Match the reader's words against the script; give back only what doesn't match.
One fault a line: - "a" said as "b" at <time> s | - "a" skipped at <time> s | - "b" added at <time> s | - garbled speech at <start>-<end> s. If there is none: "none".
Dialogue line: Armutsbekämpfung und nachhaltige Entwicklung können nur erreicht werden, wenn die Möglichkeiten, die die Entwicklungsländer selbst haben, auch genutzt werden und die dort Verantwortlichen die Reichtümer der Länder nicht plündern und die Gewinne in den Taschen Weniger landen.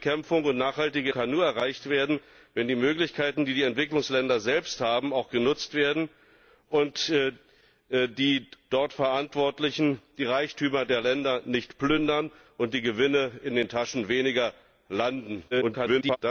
- "Entwicklung" skipped at 1.1 s
- garbled speech at 15.5-16.2 s